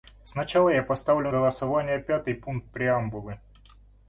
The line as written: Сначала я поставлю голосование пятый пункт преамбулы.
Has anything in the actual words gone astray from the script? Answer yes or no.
no